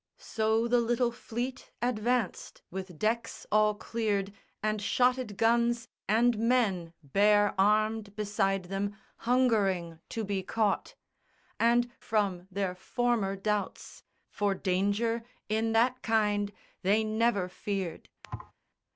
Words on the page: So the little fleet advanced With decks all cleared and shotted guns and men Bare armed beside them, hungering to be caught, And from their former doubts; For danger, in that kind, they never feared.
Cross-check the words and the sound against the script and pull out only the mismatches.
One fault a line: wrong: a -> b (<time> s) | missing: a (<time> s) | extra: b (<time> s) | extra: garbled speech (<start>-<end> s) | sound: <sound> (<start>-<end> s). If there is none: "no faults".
sound: thud (18.2-18.5 s)